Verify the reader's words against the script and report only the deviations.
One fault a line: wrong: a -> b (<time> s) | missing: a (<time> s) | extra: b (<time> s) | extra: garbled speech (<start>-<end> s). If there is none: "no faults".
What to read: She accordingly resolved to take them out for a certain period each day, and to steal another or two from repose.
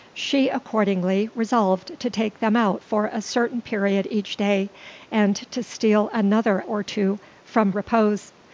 no faults